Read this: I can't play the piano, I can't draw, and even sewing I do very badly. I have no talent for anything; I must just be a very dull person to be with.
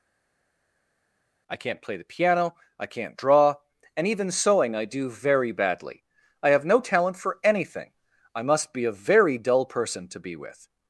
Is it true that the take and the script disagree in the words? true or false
true